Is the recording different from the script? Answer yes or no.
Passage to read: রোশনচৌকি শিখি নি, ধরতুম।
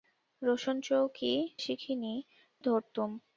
no